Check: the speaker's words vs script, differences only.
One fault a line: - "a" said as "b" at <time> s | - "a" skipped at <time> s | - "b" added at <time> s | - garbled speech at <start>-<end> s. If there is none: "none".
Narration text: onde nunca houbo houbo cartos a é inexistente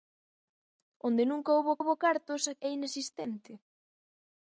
none